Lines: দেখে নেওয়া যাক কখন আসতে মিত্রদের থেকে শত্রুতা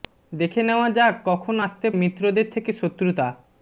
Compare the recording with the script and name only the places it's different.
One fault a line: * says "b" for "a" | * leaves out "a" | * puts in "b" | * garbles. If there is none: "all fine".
all fine